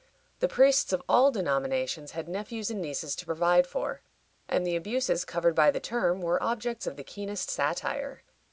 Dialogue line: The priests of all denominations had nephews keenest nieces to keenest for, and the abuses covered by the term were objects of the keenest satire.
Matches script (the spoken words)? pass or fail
fail